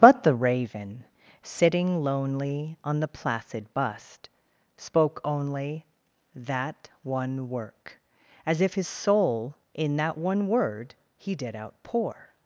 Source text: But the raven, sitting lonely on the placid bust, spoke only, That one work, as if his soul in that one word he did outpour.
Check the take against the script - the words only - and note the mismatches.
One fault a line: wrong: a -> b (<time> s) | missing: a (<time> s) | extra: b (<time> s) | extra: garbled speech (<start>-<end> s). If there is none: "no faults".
no faults